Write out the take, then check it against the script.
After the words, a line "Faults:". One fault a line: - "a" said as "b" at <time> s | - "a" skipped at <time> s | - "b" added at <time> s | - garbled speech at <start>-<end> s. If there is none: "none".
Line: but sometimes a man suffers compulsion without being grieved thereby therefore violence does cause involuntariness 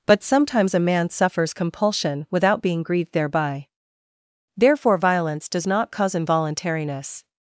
but sometimes a man suffers compulsion without being grieved thereby therefore violence does not cause involuntariness
Faults:
- "not" added at 5.7 s